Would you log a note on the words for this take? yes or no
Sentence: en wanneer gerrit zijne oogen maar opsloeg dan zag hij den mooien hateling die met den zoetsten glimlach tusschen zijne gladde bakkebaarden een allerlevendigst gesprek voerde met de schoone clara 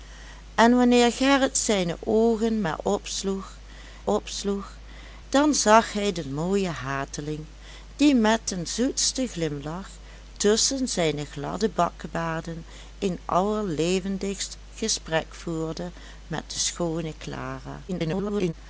yes